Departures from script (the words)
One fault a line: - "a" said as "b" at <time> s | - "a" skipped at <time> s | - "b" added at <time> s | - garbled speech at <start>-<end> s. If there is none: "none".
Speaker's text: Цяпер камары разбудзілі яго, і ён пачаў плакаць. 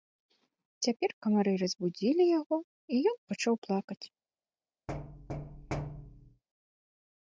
none